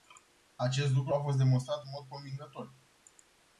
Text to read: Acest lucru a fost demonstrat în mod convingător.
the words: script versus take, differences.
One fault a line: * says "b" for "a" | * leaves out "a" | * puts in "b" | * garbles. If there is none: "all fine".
all fine